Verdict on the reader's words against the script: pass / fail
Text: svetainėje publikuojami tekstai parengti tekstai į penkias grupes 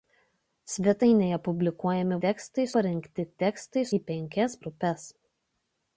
pass